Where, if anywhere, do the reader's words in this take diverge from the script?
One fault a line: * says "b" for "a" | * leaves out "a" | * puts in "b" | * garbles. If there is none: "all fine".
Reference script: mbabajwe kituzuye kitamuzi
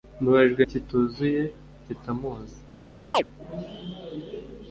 all fine